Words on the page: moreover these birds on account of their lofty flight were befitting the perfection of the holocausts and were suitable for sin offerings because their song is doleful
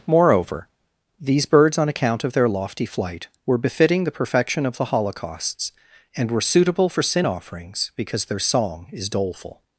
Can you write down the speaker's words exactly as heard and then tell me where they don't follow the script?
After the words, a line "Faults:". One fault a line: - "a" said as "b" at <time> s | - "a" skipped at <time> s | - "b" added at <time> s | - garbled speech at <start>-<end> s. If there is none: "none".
moreover these birds on account of their lofty flight were befitting the perfection of the holocausts and were suitable for sin offerings because their song is doleful
Faults:
none